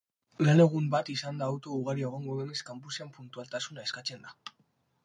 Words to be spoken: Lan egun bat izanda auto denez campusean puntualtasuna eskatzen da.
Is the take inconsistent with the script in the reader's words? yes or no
yes